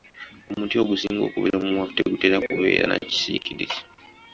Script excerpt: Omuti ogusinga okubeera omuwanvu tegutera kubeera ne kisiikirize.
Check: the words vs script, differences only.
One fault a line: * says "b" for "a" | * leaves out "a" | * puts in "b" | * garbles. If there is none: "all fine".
* says "na" for "ne"